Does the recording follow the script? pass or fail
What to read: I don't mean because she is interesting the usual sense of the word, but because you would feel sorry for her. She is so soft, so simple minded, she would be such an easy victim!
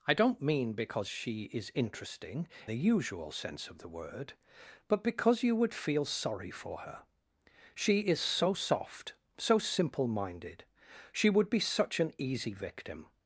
pass